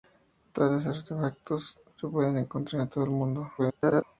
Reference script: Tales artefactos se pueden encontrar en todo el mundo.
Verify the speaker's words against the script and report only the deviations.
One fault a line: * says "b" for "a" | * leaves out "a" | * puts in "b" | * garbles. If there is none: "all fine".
* garbles